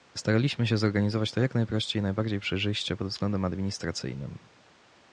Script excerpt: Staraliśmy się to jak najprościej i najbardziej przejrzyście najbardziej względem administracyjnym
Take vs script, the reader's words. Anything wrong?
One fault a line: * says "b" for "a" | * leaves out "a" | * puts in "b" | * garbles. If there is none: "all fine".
* puts in "zorganizować"
* says "pod" for "najbardziej"